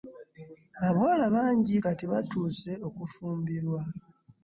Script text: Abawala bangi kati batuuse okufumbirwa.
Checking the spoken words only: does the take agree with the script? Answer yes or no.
yes